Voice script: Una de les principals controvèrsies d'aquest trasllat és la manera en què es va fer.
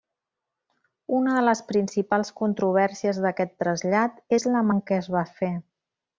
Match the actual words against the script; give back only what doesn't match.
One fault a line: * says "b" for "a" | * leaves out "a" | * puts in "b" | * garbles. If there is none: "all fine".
* leaves out "manera"